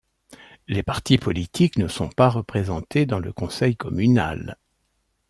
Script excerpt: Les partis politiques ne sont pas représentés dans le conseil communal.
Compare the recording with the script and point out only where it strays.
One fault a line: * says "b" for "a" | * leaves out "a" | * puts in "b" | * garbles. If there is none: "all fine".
all fine